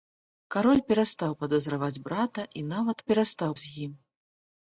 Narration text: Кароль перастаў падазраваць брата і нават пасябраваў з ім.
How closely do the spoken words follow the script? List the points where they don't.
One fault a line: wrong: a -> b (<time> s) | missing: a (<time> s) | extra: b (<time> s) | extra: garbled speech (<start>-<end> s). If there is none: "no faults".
wrong: пасябраваў -> перастаў (3.1 s)